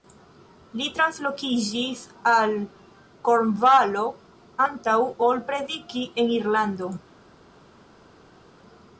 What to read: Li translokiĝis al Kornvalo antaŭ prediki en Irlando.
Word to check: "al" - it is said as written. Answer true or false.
true